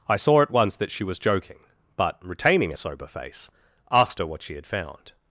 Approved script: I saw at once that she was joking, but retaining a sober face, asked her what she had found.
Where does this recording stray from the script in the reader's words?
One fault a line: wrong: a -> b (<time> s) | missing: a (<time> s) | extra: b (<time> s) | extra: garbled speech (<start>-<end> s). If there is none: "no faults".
no faults